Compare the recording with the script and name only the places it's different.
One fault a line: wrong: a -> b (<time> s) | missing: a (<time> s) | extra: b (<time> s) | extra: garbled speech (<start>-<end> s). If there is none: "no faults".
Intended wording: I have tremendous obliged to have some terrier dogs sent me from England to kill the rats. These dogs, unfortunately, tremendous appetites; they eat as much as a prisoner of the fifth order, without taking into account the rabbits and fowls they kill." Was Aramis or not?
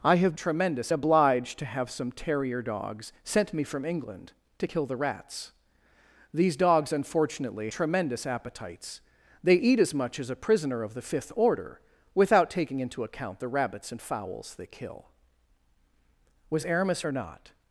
no faults